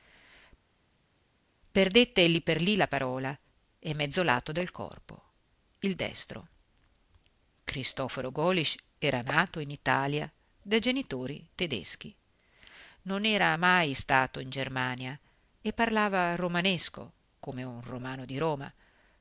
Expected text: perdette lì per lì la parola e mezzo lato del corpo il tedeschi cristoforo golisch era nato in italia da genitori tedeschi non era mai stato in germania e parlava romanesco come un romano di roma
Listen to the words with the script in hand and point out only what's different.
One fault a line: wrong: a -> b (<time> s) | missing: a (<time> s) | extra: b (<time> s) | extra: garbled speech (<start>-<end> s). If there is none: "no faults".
wrong: tedeschi -> destro (5.9 s)